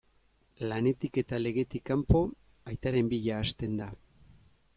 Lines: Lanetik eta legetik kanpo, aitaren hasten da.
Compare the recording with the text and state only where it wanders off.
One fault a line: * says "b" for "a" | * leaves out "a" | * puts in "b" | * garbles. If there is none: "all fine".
* puts in "bila"